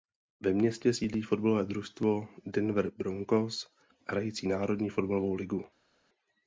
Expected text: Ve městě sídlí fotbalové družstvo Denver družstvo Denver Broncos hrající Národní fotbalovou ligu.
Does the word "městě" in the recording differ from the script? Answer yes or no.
no